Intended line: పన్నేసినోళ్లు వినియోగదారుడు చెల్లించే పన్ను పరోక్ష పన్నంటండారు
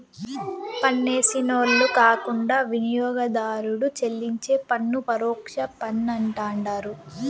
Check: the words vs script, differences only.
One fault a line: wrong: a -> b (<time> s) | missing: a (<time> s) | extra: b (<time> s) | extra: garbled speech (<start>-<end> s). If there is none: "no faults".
extra: కాకుండా (2.0 s)